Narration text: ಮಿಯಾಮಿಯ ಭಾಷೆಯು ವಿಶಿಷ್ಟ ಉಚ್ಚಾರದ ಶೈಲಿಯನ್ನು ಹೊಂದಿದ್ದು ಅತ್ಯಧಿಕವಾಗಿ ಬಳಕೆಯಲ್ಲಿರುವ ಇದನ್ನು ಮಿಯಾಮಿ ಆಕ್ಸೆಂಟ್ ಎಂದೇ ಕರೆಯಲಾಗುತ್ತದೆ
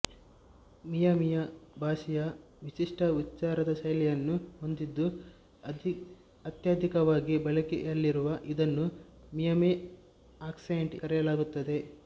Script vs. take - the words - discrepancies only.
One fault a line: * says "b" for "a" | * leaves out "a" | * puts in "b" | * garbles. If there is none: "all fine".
* leaves out "ಎಂದೇ"